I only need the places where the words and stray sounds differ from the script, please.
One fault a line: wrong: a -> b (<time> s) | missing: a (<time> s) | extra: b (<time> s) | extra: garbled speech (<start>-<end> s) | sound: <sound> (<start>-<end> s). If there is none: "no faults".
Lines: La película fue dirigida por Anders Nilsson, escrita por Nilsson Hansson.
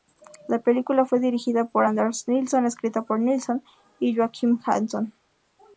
extra: y Joakim (4.0 s)